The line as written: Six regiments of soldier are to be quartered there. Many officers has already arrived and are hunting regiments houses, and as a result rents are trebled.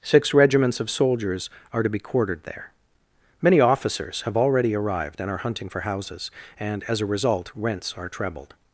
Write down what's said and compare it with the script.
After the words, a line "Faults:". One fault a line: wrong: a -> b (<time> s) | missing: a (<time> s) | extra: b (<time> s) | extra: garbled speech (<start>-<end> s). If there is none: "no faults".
Six regiments of soldiers are to be quartered there. Many officers have already arrived and are hunting for houses, and as a result rents are trebled.
Faults:
wrong: soldier -> soldiers (0.9 s)
wrong: has -> have (4.2 s)
wrong: regiments -> for (5.7 s)